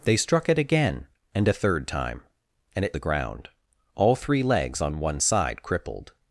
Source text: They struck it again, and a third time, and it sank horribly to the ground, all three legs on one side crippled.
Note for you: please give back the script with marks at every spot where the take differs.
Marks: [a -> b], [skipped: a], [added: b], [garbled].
They struck it again, and a third time, and it [skipped: sank horribly to] the ground, all three legs on one side crippled.